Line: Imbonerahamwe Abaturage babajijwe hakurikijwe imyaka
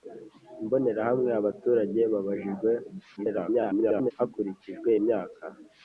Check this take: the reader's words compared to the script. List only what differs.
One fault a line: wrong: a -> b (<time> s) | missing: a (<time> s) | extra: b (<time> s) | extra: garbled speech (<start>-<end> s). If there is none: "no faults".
extra: garbled speech (3.2-4.1 s)